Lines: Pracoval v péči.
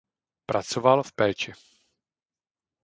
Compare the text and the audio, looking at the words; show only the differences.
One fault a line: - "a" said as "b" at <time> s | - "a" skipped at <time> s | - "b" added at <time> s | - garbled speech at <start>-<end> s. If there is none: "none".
none